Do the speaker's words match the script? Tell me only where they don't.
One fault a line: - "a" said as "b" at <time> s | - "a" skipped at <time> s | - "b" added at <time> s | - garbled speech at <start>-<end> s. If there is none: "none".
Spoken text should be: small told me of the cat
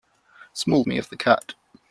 - "told" skipped at 0.8 s